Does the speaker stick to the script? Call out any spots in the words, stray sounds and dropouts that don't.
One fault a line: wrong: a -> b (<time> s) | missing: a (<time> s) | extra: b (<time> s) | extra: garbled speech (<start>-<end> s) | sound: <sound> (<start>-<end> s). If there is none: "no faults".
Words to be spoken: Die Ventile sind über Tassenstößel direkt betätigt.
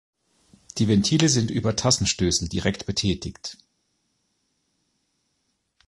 no faults